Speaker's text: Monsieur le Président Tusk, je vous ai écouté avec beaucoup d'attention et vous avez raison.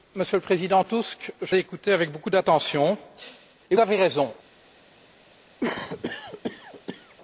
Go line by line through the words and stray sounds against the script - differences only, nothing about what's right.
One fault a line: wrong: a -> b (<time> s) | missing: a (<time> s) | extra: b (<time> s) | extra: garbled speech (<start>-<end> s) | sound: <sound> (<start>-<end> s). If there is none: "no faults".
missing: vous (1.6 s)
missing: vous (3.7 s)
sound: cough (5.6-7.2 s)